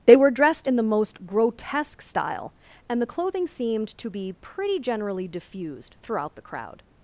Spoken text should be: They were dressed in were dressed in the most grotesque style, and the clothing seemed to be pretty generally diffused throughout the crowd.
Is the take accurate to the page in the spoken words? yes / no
no